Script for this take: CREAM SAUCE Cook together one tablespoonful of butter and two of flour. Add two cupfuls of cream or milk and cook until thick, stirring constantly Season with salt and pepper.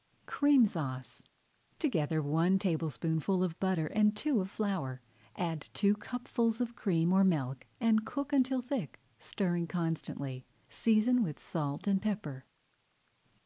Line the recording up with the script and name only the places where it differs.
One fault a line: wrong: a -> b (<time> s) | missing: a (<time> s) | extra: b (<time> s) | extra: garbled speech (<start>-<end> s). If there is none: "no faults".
missing: Cook (1.2 s)